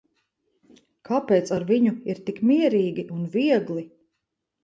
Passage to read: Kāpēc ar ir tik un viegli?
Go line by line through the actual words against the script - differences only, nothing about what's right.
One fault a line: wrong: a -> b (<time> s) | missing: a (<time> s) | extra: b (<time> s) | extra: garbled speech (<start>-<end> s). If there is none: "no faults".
extra: viņu (1.7 s)
extra: mierīgi (2.5 s)